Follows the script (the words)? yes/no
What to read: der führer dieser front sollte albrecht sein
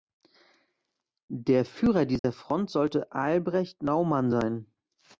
no